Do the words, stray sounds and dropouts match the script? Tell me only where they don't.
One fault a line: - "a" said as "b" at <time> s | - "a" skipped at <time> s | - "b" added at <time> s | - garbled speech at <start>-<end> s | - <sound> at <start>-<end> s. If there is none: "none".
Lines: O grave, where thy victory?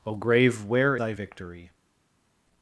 none